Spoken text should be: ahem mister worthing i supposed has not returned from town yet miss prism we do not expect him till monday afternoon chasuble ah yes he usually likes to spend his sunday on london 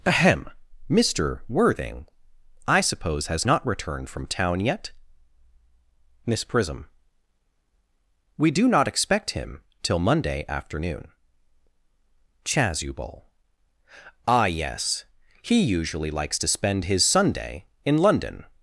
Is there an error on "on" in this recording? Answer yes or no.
yes